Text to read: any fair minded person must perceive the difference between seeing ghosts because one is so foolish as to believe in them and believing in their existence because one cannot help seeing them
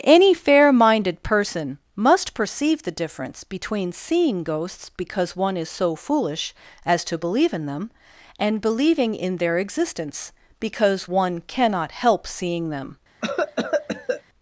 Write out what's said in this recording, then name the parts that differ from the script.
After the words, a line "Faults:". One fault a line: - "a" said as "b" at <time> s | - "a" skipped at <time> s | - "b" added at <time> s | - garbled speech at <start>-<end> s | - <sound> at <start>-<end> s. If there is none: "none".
any fair minded person must perceive the difference between seeing ghosts because one is so foolish as to believe in them and believing in their existence because one cannot help seeing them
Faults:
- cough at 13.2-14.2 s